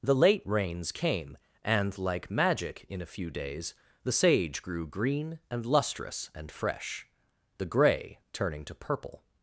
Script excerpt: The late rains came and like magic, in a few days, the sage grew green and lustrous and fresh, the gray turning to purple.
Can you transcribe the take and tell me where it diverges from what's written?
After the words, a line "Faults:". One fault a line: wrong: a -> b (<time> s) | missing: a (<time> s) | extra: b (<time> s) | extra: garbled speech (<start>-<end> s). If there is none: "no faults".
The late rains came and like magic, in a few days, the sage grew green and lustrous and fresh, the gray turning to purple.
Faults:
no faults